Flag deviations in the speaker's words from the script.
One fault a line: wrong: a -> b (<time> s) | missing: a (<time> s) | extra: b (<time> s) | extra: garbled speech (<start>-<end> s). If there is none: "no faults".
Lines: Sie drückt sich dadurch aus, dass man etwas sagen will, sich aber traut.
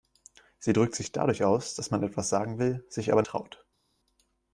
no faults